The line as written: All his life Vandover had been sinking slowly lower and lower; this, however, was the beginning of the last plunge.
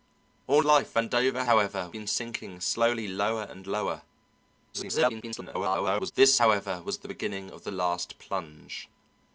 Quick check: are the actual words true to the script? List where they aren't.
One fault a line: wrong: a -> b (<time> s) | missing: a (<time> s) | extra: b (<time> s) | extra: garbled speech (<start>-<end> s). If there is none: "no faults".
missing: his (0.6 s)
wrong: had -> however (1.5 s)
extra: garbled speech (4.7-6.1 s)